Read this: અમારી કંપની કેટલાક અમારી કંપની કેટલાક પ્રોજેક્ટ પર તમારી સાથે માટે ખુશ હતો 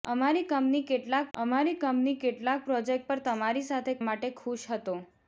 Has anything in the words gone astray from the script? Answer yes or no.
no